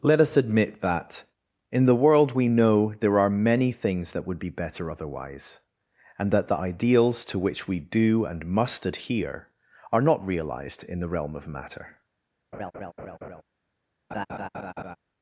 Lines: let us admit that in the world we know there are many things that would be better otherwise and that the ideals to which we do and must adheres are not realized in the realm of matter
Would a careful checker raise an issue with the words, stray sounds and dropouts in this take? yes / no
yes